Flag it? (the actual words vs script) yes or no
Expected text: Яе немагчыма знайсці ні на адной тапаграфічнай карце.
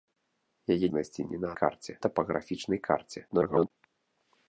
yes